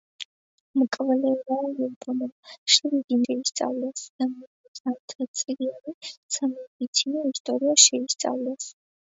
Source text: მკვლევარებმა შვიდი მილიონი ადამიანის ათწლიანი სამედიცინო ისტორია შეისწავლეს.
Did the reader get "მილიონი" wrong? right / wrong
wrong